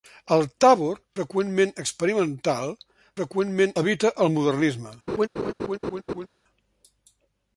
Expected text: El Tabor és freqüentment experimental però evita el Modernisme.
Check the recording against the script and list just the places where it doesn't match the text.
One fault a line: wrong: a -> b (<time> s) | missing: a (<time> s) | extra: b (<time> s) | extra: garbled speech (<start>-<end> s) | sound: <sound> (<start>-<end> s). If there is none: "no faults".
missing: és (0.9 s)
wrong: però -> freqüentment (3.2 s)
sound: laugh (5.1-6.3 s)